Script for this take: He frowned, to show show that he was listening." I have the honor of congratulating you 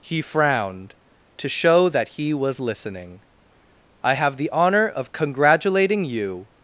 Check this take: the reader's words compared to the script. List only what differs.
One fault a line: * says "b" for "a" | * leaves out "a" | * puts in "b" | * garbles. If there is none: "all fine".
* leaves out "show"